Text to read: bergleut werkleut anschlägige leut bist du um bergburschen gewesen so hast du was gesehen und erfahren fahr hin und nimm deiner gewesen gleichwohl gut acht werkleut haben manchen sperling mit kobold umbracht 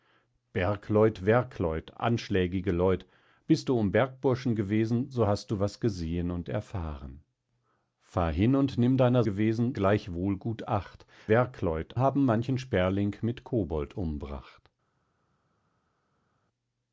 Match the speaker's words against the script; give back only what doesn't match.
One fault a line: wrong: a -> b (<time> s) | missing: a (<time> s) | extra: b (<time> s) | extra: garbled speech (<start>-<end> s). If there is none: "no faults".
no faults